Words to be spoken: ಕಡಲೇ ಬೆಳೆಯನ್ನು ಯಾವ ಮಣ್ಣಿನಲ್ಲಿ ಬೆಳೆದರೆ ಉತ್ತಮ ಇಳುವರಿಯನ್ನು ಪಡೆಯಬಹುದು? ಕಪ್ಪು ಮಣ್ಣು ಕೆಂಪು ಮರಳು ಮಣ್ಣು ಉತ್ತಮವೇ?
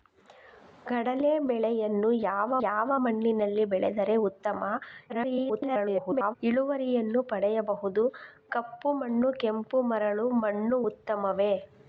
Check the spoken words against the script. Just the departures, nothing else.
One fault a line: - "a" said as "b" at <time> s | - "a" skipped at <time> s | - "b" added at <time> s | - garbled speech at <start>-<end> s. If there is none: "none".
- "ಯಾವ" added at 2.6 s
- garbled speech at 5.1-6.3 s